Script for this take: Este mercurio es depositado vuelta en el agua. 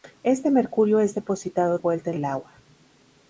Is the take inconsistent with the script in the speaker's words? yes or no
no